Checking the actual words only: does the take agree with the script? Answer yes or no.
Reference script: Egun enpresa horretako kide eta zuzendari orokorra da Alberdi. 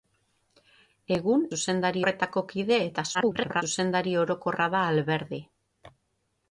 no